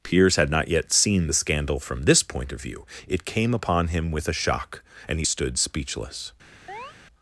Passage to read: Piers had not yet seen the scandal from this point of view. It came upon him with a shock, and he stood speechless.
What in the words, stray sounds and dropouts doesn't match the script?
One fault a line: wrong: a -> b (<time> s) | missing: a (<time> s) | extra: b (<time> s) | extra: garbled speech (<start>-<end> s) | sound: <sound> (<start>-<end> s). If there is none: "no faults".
sound: chirp (6.7-7.0 s)